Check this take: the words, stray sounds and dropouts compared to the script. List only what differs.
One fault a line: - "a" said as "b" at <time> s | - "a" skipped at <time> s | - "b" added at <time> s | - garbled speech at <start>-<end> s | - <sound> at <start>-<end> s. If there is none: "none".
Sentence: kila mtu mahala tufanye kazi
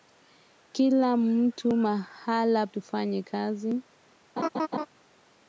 - laugh at 4.4-4.9 s